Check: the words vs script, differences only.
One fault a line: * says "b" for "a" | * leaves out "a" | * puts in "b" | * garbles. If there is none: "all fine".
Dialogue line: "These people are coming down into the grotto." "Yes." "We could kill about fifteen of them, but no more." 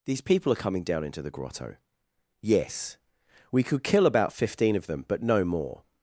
all fine